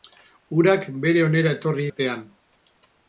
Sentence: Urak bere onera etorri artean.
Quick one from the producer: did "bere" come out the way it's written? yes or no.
yes